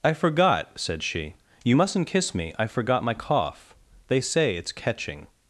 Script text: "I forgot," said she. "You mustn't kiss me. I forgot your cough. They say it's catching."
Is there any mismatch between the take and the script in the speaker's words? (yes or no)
yes